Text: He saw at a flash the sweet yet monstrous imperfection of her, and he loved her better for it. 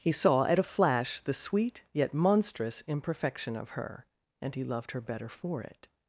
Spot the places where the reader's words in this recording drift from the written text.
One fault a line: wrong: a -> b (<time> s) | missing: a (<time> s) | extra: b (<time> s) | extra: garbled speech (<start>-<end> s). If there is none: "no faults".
no faults